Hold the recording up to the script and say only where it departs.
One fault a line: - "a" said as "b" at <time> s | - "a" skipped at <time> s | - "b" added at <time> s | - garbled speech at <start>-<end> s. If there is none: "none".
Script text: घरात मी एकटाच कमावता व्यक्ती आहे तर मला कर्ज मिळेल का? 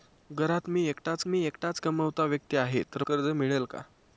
- "मी एकटाच" added at 1.3 s
- "मला" skipped at 3.0 s